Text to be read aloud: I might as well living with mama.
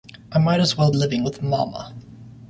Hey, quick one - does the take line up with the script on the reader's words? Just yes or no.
yes